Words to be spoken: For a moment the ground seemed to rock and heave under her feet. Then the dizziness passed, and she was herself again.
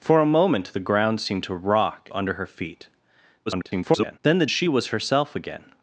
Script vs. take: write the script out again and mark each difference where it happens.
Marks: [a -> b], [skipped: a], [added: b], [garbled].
For a moment the ground seemed to rock [skipped: and heave] under her feet. [garbled] Then the [skipped: dizziness passed, and] she was herself again.